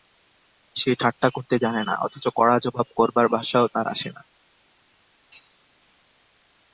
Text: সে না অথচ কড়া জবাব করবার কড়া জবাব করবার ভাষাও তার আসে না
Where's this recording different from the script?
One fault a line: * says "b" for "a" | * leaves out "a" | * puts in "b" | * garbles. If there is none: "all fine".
* says "ঠাট্টা করতে জানে না অথচ" for "না অথচ কড়া জবাব করবার"